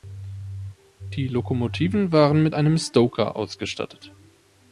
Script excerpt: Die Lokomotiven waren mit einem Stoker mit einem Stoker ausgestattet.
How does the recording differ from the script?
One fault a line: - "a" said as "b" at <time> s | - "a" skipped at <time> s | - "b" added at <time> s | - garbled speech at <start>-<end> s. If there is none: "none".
- "mit einem Stoker" skipped at 3.3 s